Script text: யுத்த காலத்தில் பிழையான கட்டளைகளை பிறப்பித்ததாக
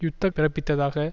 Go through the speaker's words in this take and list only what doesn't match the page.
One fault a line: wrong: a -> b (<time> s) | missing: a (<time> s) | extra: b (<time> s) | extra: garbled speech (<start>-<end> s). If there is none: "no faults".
missing: காலத்தில் பிழையான கட்டளைகளை (0.3 s)